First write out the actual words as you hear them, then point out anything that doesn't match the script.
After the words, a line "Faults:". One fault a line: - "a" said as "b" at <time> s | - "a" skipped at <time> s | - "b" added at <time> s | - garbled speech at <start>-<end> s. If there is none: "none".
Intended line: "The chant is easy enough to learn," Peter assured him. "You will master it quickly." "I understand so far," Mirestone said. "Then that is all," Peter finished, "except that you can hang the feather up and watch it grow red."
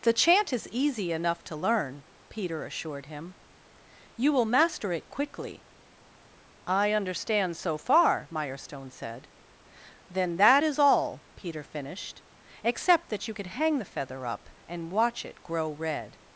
"The chant is easy enough to learn," Peter assured him. "You will master it quickly." "I understand so far," Mirestone said. "Then that is all," Peter finished, "except that you could hang the feather up and watch it grow red."
Faults:
- "can" said as "could" at 13.3 s